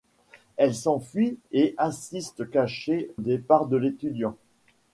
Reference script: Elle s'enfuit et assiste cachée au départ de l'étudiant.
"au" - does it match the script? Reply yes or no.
no